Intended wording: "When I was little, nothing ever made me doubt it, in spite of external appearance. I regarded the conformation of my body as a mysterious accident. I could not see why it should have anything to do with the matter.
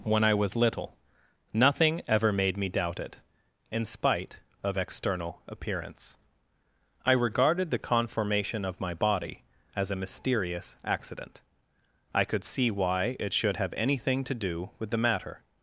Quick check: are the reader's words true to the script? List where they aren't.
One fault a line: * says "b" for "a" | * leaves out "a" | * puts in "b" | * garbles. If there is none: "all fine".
* leaves out "not"